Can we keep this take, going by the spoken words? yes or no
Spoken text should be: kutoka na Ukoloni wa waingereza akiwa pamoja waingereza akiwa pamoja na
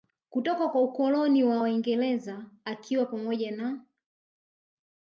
no